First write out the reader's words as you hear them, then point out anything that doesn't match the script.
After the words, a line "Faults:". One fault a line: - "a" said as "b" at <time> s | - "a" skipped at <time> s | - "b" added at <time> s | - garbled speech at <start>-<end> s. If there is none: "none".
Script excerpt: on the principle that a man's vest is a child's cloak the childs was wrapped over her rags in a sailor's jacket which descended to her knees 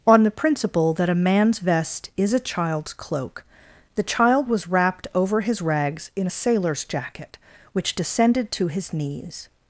on the principle that a man's vest is a child's cloak the child was wrapped over his rags in a sailor's jacket which descended to his knees
Faults:
- "childs" said as "child" at 4.0 s
- "her" said as "his" at 5.4 s
- "her" said as "his" at 8.7 s